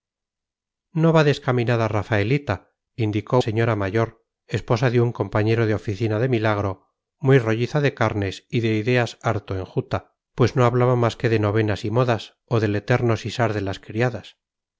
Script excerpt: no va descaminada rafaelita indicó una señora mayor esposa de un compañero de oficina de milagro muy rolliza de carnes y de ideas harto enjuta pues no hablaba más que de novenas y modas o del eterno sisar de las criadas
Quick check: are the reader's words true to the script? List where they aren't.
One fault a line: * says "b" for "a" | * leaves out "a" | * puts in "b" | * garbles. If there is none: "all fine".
* leaves out "una"